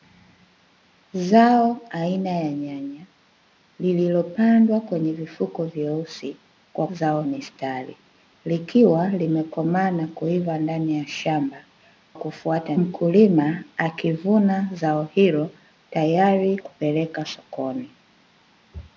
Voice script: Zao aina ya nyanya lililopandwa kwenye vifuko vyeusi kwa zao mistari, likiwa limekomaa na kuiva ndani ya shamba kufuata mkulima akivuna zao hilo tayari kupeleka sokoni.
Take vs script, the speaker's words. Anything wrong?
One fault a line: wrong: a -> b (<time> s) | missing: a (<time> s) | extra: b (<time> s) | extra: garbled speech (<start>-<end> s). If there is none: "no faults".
no faults